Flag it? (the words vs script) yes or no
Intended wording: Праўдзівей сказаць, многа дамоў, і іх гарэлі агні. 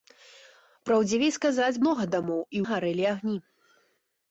no